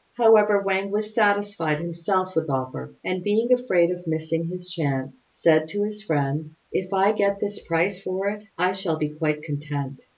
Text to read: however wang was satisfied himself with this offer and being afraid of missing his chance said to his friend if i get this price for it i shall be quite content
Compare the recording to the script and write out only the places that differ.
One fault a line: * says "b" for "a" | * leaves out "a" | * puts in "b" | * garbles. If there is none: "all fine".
* leaves out "this"